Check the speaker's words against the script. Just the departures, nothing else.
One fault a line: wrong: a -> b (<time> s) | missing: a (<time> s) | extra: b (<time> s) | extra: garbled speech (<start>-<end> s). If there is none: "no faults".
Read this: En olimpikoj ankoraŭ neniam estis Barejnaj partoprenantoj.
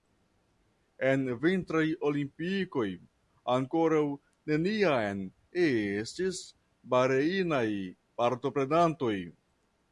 extra: vintraj (1.4 s)